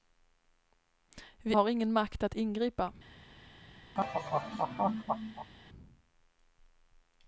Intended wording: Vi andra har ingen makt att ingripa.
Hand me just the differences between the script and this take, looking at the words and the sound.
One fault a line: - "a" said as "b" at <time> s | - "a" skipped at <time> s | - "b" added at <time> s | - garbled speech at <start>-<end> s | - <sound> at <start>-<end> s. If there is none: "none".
- "andra" skipped at 1.6 s
- laugh at 3.9-5.5 s